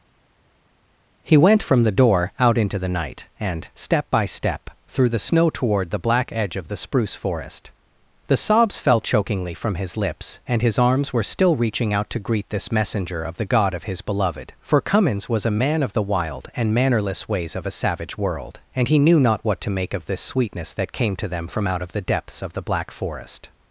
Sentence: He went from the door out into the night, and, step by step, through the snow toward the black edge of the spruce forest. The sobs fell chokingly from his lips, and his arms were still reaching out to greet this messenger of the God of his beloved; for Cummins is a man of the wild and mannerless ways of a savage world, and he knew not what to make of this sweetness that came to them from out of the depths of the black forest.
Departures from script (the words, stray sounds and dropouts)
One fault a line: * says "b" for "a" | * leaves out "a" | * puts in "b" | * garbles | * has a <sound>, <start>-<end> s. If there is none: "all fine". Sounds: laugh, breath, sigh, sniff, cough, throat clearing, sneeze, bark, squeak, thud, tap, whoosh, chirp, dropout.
* says "was" for "is"